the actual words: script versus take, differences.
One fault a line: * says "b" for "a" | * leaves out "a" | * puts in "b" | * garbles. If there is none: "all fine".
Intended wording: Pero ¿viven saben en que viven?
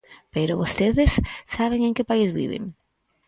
* says "vostedes" for "viven"
* puts in "país"